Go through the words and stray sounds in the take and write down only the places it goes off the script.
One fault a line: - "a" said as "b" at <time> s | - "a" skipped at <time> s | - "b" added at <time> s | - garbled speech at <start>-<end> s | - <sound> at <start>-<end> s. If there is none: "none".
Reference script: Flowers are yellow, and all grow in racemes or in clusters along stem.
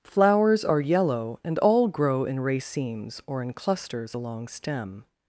none